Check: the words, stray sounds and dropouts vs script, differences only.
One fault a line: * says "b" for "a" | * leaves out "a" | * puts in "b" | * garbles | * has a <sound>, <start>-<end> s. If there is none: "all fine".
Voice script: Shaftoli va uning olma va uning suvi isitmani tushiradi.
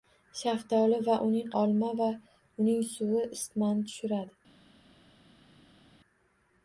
all fine